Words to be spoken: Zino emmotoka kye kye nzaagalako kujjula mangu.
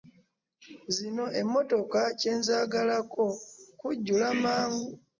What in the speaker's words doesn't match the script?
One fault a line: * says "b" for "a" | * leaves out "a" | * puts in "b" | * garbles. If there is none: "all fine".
* leaves out "kye"